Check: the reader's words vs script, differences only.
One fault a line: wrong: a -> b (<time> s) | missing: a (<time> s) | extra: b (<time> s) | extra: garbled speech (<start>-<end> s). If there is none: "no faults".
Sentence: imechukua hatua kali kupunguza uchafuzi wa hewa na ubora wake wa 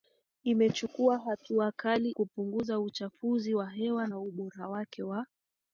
no faults